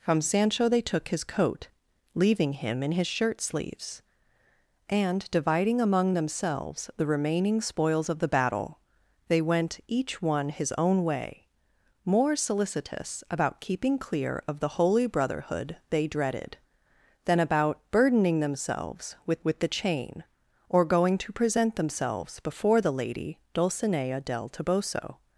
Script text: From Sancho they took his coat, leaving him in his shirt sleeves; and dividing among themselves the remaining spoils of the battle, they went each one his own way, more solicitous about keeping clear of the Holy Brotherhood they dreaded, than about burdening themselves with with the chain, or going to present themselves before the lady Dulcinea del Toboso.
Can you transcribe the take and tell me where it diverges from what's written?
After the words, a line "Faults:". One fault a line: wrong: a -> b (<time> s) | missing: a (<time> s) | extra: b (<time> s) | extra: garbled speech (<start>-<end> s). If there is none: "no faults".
From Sancho they took his coat, leaving him in his shirt sleeves; and dividing among themselves the remaining spoils of the battle, they went each one his own way, more solicitous about keeping clear of the Holy Brotherhood they dreaded, than about burdening themselves with with the chain, or going to present themselves before the lady Dulcinea del Toboso.
Faults:
no faults